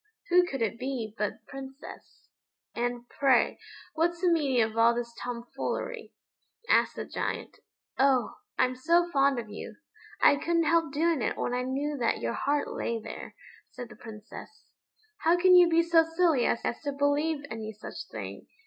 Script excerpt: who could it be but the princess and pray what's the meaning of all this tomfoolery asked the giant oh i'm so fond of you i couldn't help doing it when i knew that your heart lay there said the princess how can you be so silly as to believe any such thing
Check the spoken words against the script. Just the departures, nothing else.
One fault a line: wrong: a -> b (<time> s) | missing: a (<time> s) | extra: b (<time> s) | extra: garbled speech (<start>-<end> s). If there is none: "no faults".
missing: the (1.3 s)
extra: as (16.6 s)